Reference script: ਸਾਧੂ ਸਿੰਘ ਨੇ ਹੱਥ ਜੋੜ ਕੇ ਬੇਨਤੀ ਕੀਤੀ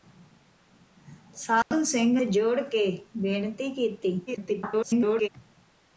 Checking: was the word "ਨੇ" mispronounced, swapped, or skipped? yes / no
yes